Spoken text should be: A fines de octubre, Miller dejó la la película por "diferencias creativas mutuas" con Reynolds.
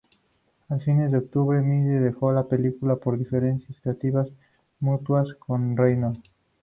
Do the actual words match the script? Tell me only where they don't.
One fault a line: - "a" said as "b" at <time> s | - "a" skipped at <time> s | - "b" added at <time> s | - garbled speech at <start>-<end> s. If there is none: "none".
- "la" skipped at 2.5 s